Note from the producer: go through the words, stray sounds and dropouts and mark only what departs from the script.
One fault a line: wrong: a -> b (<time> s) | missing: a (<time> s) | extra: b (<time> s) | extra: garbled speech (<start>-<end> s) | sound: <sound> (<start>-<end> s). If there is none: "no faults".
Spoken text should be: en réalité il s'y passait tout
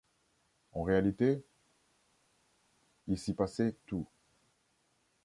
no faults